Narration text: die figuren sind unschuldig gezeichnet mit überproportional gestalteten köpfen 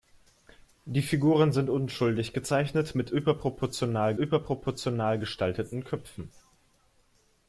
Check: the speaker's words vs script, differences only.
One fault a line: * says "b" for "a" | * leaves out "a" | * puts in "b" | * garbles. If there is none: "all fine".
* puts in "überproportional"